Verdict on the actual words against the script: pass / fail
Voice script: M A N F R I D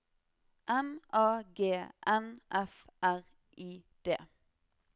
fail